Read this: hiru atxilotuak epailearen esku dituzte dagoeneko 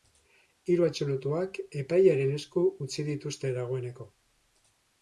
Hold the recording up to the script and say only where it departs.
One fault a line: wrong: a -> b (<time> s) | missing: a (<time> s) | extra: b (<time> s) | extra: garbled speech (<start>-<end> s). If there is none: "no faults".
extra: utzi (2.9 s)